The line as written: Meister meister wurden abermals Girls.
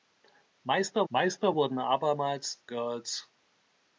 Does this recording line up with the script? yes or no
yes